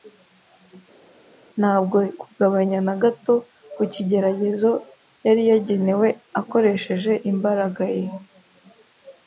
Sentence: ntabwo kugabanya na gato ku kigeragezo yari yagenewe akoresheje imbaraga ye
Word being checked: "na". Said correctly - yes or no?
yes